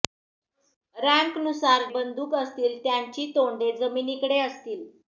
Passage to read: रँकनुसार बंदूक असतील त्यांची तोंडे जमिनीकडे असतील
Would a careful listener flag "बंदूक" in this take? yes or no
no